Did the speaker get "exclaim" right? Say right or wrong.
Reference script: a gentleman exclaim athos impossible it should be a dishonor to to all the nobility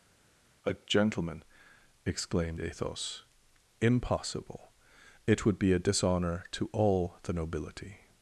wrong